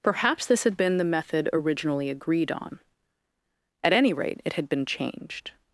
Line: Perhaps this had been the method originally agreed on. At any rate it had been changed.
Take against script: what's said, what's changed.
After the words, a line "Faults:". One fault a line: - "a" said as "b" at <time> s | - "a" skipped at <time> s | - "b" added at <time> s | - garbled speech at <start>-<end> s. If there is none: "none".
Perhaps this had been the method originally agreed on. At any rate it had been changed.
Faults:
none